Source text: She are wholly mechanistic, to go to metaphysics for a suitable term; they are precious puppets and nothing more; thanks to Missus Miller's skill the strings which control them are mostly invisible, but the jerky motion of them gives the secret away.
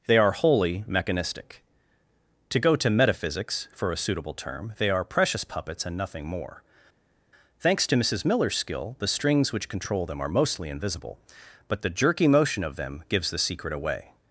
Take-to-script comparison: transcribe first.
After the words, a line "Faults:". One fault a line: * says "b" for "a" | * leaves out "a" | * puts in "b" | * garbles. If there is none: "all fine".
They are wholly mechanistic, to go to metaphysics for a suitable term; they are precious puppets and nothing more; thanks to Missus Miller's skill the strings which control them are mostly invisible, but the jerky motion of them gives the secret away.
Faults:
* says "They" for "She"